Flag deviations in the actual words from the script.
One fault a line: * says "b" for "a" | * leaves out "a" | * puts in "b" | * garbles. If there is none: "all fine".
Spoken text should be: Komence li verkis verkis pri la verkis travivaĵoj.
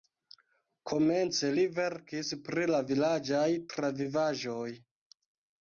* leaves out "verkis"
* says "vilaĝaj" for "verkis"